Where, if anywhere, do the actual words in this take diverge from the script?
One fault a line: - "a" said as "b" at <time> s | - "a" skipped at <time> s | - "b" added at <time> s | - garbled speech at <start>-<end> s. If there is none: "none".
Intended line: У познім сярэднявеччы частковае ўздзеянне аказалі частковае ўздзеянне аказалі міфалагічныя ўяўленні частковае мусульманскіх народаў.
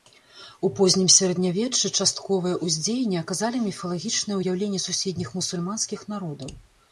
- "частковае ўздзеянне аказалі" skipped at 3.6 s
- "частковае" said as "суседніх" at 4.9 s